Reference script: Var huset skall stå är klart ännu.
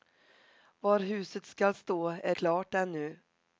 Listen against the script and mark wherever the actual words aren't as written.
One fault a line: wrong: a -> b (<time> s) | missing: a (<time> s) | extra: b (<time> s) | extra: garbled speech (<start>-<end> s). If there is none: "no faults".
no faults